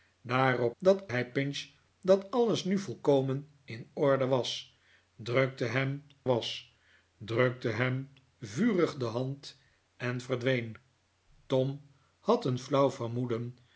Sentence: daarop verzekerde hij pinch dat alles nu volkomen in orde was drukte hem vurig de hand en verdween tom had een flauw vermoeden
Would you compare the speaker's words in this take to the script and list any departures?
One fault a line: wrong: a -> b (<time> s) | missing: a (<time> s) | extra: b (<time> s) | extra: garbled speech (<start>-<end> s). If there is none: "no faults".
wrong: verzekerde -> dat (0.8 s)
extra: was drukte hem (6.2 s)